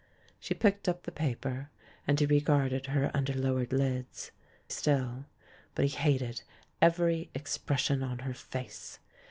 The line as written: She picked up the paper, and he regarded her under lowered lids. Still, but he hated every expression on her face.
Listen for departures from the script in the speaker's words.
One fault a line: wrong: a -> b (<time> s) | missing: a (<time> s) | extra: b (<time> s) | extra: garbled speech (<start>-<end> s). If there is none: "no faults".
no faults